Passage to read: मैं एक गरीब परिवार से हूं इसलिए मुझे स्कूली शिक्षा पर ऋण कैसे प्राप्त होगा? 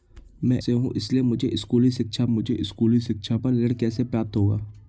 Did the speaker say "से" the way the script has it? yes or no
no